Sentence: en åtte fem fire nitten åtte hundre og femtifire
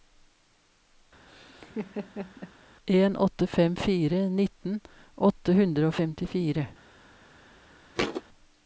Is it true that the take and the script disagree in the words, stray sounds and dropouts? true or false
true